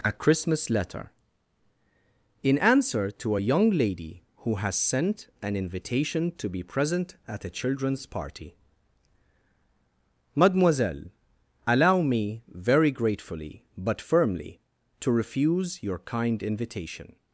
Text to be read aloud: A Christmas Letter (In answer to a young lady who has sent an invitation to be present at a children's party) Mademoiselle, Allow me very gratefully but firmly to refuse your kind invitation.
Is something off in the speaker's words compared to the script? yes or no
no